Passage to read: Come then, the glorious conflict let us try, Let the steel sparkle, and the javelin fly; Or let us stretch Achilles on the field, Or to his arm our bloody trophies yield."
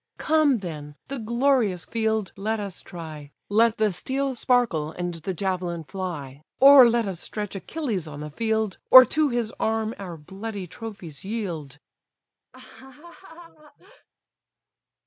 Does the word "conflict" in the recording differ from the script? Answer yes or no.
yes